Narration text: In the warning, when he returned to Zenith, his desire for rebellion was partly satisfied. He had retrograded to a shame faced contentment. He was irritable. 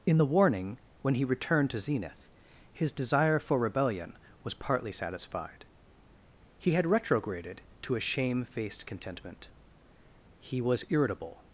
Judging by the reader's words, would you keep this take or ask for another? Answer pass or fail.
pass